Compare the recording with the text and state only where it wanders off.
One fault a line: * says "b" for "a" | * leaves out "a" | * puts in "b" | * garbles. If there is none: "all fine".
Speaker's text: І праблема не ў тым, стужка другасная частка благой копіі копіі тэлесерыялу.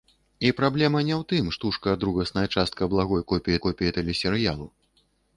all fine